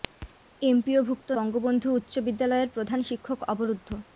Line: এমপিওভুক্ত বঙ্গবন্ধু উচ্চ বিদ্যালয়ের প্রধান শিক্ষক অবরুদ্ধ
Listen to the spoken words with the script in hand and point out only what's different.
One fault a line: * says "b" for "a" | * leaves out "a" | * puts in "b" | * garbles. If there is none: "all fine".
all fine